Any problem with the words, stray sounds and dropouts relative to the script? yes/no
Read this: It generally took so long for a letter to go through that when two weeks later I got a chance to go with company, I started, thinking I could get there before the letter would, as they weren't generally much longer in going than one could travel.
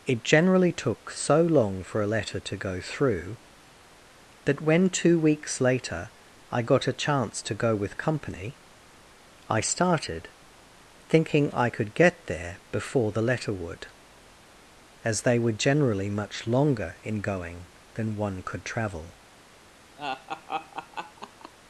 yes